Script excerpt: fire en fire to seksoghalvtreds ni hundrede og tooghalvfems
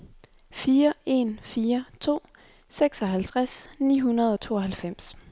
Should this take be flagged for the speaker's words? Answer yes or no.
no